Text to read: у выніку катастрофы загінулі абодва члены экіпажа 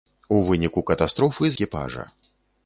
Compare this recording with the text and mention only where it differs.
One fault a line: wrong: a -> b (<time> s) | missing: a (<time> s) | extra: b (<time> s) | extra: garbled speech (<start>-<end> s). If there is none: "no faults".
missing: загінулі абодва члены (1.5 s)